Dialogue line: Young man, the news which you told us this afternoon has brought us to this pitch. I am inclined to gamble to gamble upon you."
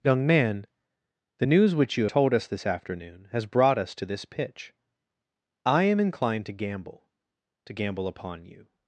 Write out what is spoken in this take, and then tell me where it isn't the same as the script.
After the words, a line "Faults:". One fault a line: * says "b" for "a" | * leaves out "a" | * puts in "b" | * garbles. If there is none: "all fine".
Young man, the news which you told us this afternoon has brought us to this pitch. I am inclined to gamble to gamble upon you."
Faults:
all fine